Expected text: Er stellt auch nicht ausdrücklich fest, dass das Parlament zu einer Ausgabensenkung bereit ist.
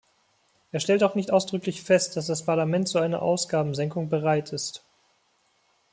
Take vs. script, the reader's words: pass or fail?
pass